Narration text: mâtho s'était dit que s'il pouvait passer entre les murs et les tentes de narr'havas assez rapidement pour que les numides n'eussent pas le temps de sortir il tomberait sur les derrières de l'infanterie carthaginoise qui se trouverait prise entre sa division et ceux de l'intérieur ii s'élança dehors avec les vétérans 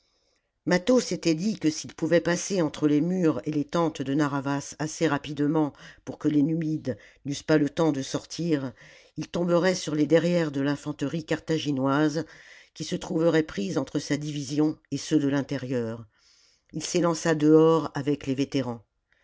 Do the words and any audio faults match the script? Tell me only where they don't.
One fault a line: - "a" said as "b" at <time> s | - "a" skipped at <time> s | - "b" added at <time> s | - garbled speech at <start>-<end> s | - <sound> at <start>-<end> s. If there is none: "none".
none